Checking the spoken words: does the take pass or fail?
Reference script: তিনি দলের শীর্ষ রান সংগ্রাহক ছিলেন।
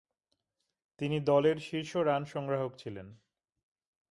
pass